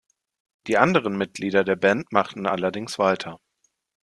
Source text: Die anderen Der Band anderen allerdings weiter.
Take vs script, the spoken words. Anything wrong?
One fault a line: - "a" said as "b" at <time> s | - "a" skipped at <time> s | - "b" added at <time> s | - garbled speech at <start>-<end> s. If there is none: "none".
- "Mitglieder" added at 1.1 s
- "anderen" said as "machten" at 2.1 s